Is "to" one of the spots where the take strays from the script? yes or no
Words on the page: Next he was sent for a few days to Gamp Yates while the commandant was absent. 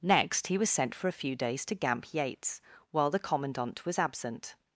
no